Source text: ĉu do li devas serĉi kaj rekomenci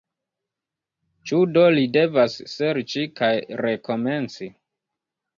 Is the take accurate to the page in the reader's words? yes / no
yes